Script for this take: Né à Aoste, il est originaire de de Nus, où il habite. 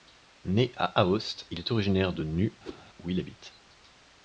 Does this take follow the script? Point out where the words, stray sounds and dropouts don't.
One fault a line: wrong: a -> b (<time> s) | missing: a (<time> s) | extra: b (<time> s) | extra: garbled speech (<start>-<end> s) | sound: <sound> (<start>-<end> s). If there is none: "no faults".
missing: de (2.2 s)
sound: whoosh (2.6-2.8 s)